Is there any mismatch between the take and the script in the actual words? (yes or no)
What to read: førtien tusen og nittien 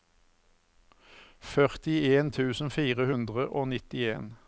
yes